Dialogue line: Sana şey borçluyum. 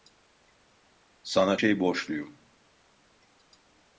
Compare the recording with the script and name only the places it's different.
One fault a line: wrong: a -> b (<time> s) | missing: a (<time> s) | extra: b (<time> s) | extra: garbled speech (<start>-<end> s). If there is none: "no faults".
no faults